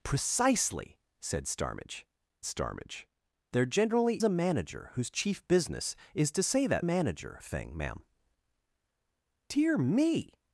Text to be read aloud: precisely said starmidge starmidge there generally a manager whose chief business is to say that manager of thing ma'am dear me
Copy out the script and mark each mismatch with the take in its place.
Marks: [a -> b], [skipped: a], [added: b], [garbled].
precisely said starmidge starmidge there generally a manager whose chief business is to say that manager of thing ma'am dear me